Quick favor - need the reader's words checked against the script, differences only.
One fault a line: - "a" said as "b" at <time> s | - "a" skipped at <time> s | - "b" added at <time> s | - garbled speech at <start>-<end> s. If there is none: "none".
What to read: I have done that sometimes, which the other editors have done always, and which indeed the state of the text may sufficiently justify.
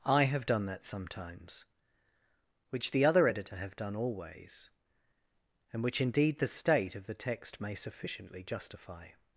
- "editors" said as "editor" at 3.2 s